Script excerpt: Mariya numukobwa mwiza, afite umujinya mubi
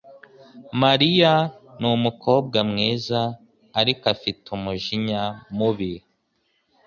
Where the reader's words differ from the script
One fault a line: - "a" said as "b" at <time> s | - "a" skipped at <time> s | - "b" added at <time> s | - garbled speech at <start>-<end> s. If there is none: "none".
- "ariko" added at 3.8 s